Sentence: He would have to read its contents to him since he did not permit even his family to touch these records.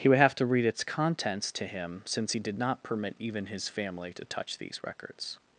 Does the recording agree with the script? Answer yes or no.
yes